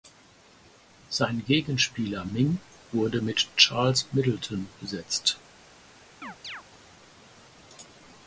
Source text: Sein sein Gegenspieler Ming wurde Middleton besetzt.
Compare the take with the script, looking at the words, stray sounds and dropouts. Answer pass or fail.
fail